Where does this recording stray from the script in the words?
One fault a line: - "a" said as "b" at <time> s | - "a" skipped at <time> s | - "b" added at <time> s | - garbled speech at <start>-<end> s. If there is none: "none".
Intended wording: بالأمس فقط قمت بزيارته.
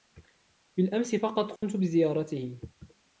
none